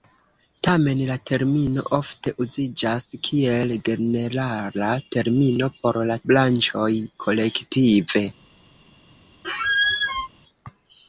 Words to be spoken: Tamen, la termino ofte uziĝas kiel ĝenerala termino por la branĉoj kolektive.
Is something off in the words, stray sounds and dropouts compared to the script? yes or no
yes